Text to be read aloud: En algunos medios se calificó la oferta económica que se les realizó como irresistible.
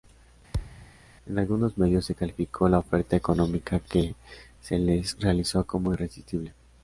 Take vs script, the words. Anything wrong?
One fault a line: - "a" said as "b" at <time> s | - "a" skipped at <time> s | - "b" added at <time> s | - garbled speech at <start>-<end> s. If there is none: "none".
none